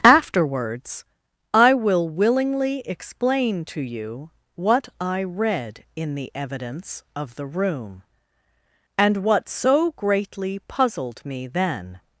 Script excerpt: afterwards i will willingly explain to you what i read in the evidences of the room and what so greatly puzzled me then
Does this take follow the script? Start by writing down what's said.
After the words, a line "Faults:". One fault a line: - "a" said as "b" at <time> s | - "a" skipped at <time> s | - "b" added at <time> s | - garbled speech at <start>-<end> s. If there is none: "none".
afterwards i will willingly explain to you what i read in the evidence of the room and what so greatly puzzled me then
Faults:
- "evidences" said as "evidence" at 6.3 s